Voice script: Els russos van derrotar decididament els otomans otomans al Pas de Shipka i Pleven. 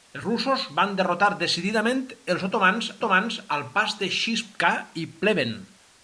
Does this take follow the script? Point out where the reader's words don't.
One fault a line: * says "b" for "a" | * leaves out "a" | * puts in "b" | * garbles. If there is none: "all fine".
all fine